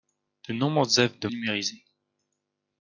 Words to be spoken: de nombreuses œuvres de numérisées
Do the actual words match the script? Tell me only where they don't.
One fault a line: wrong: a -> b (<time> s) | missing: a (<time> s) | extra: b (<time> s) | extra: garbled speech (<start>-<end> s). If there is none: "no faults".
no faults